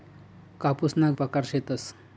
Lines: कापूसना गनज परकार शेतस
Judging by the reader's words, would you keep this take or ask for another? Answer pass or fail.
fail